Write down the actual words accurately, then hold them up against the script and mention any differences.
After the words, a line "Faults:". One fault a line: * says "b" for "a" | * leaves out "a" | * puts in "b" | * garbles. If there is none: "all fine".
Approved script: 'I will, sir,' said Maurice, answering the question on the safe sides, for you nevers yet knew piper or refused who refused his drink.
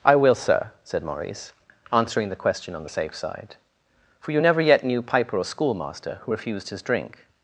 'I will, sir,' said Maurice, answering the question on the safe side, for you never yet knew piper or schoolmaster who refused his drink.
Faults:
* says "side" for "sides"
* says "never" for "nevers"
* says "schoolmaster" for "refused"